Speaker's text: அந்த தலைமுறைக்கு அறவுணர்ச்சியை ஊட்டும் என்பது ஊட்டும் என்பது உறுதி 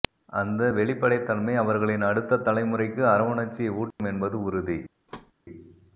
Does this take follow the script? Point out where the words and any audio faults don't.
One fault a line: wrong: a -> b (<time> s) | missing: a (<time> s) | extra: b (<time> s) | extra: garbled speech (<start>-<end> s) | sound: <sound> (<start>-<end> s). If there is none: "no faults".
extra: வெளிப்படைத்தன்மை அவர்களின் அடுத்த (0.7 s)
sound: dropout (3.9-4.0 s)
missing: ஊட்டும் என்பது (4.4 s)
sound: thud (5.1-5.3 s)